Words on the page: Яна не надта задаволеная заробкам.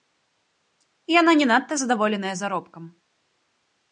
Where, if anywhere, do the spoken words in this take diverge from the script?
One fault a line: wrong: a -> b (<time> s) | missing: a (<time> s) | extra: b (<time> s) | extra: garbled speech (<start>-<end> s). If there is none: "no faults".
no faults